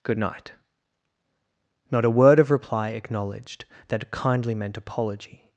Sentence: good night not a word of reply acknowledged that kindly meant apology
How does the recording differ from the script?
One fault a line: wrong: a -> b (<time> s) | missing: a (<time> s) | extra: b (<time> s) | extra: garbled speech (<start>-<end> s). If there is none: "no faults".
no faults